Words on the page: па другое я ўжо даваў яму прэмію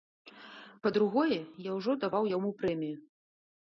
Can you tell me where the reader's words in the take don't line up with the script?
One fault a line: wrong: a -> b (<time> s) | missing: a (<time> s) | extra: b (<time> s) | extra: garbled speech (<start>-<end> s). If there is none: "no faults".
no faults